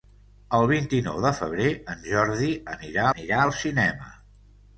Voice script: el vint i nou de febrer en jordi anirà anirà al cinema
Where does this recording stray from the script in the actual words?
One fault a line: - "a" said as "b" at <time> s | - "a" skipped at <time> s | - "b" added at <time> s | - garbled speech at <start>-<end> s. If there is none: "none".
none